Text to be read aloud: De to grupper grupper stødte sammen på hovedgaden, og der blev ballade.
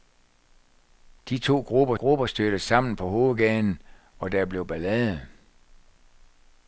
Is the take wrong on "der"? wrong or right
right